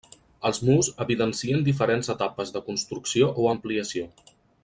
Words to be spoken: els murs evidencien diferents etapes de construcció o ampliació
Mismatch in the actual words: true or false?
false